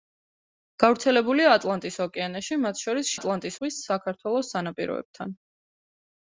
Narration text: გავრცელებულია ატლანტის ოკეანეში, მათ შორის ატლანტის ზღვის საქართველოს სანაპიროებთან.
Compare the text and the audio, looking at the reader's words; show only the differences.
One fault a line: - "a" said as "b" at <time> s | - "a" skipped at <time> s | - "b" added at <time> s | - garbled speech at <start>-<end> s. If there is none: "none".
none